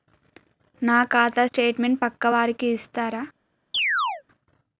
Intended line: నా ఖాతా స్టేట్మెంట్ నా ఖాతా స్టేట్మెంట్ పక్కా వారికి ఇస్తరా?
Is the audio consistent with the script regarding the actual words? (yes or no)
no